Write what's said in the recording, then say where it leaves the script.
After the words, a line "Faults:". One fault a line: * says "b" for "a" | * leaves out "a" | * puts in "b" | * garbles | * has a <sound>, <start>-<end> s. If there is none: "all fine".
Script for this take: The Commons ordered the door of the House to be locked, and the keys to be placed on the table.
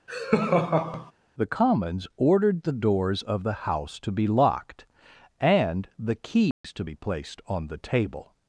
The Commons ordered the doors of the House to be locked, and the keys to be placed on the table.
Faults:
* has a laugh, 0.1-1.1 s
* says "doors" for "door"
* has a dropout, 6.5-6.6 s